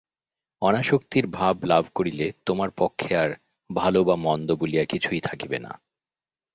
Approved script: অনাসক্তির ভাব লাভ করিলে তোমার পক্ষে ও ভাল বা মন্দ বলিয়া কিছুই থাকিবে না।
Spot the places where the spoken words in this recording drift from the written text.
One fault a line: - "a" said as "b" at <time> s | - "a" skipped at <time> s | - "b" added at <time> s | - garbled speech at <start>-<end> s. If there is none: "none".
- "ও" said as "আর" at 3.1 s